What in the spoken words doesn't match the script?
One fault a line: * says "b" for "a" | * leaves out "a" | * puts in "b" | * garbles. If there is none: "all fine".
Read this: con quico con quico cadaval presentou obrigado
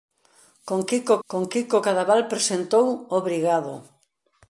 all fine